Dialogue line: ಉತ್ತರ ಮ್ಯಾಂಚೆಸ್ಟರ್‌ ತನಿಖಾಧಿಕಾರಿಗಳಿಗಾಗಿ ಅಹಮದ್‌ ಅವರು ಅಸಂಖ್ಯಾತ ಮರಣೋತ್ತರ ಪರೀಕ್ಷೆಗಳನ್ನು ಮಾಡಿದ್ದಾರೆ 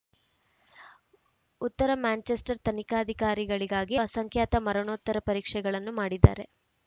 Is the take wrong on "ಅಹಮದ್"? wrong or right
wrong